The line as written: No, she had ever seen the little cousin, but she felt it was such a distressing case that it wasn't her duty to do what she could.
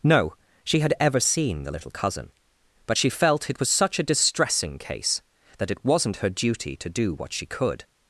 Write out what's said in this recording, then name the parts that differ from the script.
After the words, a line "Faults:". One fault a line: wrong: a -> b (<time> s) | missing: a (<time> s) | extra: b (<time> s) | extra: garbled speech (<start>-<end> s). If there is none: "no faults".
No, she had ever seen the little cousin, but she felt it was such a distressing case that it wasn't her duty to do what she could.
Faults:
no faults